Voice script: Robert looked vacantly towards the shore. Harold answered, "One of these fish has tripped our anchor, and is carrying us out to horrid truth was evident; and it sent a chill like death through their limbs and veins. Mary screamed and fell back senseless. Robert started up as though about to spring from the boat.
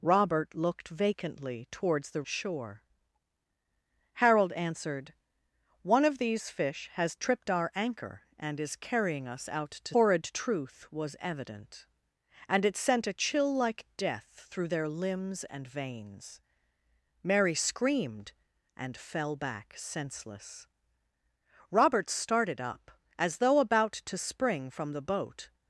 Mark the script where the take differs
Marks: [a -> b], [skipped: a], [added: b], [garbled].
Robert looked vacantly towards the shore. Harold answered, "One of these fish has tripped our anchor, and is carrying us out to horrid truth was evident; and it sent a chill like death through their limbs and veins. Mary screamed and fell back senseless. Robert started up as though about to spring from the boat.